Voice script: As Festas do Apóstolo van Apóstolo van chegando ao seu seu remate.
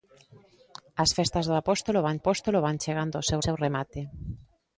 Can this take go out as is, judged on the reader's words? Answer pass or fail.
pass